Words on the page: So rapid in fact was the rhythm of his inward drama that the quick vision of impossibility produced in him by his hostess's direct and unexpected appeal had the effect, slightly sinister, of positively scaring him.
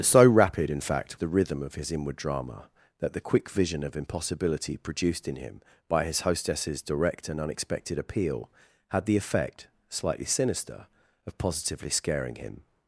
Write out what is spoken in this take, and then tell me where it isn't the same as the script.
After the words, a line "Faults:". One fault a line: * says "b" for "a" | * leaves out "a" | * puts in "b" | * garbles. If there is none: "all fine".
So rapid in fact the rhythm of his inward drama that the quick vision of impossibility produced in him by his hostess's direct and unexpected appeal had the effect, slightly sinister, of positively scaring him.
Faults:
* leaves out "was"